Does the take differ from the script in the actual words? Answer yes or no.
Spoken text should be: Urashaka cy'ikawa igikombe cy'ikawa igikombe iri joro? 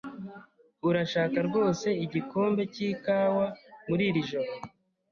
yes